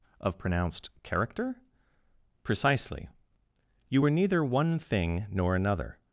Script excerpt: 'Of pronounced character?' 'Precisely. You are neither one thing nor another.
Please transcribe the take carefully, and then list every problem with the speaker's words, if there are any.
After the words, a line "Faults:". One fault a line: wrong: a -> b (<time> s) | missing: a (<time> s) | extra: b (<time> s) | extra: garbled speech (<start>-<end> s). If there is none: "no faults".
'Of pronounced character?' 'Precisely. You were neither one thing nor another.
Faults:
wrong: are -> were (4.0 s)